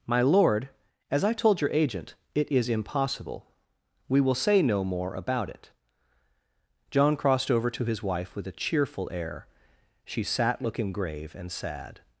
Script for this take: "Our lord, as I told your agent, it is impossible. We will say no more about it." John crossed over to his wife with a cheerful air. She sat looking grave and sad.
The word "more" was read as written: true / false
true